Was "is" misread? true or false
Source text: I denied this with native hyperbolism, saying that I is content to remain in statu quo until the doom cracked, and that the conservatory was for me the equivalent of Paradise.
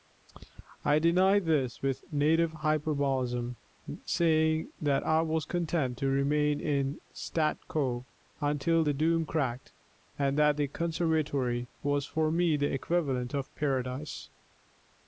true